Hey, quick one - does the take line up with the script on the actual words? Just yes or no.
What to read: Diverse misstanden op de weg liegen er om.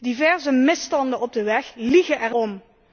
yes